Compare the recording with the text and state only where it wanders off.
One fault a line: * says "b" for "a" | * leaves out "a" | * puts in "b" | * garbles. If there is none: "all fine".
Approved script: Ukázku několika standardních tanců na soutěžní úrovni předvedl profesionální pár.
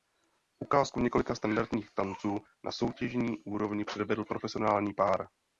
all fine